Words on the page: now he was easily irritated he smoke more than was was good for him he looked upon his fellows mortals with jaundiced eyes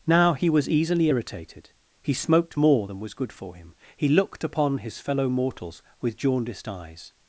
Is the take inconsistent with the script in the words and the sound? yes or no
yes